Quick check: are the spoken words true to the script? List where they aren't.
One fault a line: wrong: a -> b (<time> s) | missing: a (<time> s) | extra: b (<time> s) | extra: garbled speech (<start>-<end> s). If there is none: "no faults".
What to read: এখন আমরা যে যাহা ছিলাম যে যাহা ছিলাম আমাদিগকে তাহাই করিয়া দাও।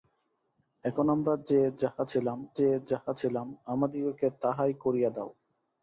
no faults